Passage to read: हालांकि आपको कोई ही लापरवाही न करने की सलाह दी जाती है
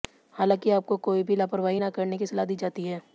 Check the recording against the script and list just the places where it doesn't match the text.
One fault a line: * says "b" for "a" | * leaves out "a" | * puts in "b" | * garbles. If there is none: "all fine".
* says "भी" for "ही"